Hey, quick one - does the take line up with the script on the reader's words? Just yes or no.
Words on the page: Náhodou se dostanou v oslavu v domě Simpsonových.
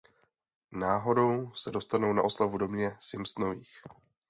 no